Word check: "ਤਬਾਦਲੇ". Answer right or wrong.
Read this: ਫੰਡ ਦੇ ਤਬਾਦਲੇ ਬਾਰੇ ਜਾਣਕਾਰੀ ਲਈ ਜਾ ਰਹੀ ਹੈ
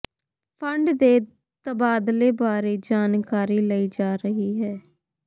right